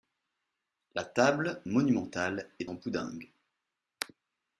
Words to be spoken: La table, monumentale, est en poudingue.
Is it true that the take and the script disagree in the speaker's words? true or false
false